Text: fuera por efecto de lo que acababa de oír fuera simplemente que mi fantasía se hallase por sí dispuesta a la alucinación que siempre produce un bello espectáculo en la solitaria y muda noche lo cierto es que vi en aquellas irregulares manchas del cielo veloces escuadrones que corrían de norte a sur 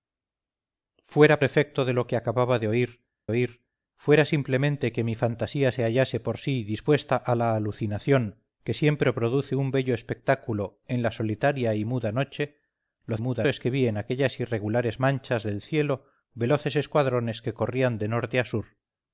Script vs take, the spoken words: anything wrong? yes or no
yes